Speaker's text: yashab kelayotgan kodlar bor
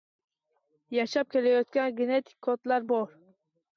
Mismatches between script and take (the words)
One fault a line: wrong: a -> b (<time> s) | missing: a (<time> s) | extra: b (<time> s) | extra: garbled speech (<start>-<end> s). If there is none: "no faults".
extra: genetik (2.0 s)